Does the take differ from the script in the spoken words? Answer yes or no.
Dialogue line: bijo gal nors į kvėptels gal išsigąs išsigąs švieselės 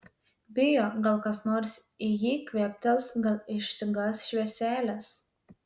yes